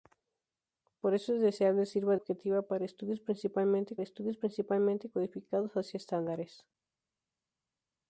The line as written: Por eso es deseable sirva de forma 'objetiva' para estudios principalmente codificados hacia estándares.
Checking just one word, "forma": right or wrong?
wrong